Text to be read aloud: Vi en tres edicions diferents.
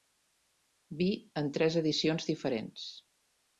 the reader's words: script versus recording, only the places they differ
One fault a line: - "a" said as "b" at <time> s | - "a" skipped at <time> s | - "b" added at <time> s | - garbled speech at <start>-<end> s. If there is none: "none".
none